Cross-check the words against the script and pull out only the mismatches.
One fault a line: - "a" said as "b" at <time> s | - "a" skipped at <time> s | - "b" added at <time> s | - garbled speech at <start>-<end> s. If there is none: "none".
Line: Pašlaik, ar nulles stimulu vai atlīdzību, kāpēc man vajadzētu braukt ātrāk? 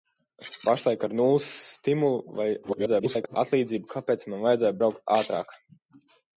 - garbled speech at 2.6-3.4 s